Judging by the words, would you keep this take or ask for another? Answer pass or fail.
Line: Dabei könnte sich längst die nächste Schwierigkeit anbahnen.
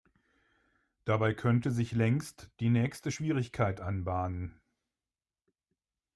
pass